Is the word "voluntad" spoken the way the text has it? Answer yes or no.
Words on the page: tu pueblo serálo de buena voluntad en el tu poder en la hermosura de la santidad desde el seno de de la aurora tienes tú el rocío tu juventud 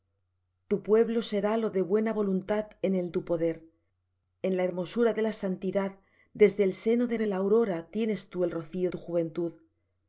yes